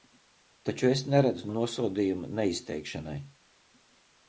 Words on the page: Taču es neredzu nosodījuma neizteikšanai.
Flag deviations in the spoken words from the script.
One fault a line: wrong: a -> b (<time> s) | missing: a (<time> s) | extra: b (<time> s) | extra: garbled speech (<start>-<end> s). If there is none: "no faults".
no faults